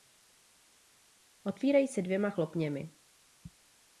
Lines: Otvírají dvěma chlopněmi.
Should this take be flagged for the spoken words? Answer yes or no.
yes